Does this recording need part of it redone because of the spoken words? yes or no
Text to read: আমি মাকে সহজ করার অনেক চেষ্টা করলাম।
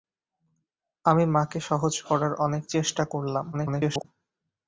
yes